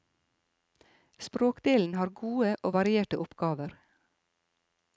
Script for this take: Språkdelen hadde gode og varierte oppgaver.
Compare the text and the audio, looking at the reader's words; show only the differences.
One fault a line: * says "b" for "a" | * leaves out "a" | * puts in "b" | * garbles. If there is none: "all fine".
* says "har" for "hadde"